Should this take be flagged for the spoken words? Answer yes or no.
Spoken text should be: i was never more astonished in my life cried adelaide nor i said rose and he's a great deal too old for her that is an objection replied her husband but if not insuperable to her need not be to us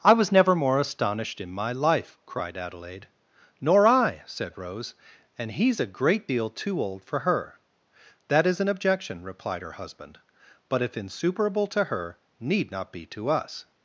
yes